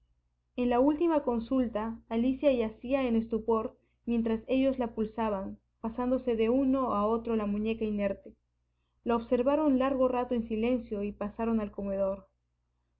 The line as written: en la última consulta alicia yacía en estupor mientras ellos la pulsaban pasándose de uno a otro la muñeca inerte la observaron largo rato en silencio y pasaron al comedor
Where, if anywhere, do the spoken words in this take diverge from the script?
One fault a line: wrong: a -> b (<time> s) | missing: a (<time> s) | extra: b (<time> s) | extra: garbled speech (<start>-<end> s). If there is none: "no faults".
no faults